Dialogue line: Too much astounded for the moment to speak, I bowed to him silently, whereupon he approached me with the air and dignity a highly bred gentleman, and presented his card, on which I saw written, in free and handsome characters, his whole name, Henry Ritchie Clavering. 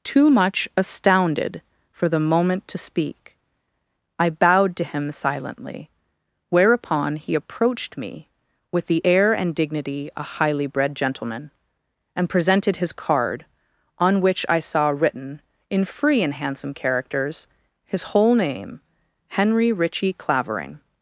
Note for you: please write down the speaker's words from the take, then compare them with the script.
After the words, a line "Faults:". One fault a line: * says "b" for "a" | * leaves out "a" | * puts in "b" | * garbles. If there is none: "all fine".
Too much astounded for the moment to speak, I bowed to him silently, whereupon he approached me with the air and dignity a highly bred gentleman, and presented his card, on which I saw written, in free and handsome characters, his whole name, Henry Ritchie Clavering.
Faults:
all fine